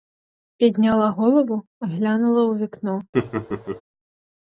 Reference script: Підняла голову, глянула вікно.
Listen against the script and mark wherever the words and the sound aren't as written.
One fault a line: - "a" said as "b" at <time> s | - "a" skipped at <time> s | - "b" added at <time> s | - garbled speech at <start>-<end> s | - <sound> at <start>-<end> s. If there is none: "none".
- "у" added at 2.4 s
- laugh at 3.1-3.8 s